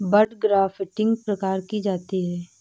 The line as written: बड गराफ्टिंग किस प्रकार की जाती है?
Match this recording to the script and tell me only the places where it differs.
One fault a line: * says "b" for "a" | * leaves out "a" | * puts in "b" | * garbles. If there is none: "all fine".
* leaves out "किस"